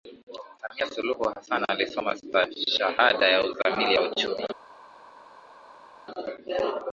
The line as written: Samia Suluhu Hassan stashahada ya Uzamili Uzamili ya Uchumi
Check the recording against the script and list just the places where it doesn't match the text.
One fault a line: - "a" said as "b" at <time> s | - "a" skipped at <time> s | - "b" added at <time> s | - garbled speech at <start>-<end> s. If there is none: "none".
- "alisoma" added at 1.7 s
- "Uzamili" skipped at 4.0 s